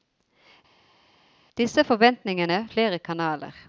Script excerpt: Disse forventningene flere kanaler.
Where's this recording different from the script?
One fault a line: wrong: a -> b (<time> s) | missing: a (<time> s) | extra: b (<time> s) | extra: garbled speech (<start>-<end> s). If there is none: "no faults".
no faults